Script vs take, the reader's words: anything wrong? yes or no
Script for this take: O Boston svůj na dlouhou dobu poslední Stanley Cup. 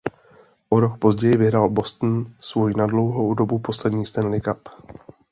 yes